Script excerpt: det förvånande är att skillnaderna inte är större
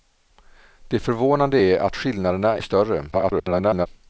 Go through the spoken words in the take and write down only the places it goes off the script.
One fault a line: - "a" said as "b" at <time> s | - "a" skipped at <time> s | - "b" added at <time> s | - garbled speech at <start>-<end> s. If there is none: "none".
- "inte" skipped at 2.6 s
- garbled speech at 3.1-3.9 s